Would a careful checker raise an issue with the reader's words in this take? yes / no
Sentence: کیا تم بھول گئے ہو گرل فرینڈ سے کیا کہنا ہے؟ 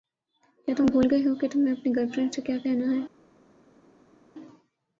yes